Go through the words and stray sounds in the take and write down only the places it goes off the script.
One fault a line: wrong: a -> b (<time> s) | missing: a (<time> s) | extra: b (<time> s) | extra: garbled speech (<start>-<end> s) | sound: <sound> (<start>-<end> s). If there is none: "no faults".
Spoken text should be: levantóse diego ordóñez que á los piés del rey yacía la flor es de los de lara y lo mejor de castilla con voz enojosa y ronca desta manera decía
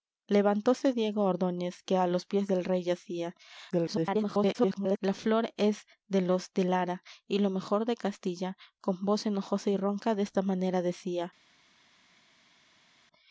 extra: garbled speech (3.7-5.0 s)